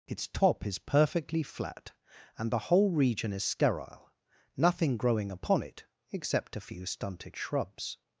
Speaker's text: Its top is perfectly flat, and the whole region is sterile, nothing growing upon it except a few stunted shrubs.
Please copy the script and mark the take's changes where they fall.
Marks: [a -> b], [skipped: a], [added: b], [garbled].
Its top is perfectly flat, and the whole region is sterile, nothing growing upon it except a few stunted shrubs.